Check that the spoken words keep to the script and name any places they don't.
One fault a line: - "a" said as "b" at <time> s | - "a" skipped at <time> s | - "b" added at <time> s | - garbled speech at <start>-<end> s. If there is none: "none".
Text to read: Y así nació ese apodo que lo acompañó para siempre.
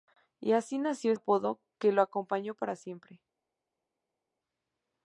- "ese" skipped at 1.1 s